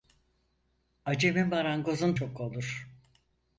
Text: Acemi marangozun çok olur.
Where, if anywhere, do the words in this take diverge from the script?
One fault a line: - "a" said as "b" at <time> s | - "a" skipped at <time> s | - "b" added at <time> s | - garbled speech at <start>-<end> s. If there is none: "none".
none